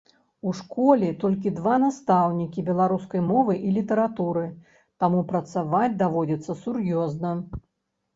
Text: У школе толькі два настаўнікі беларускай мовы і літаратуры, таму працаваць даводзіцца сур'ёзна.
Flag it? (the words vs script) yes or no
no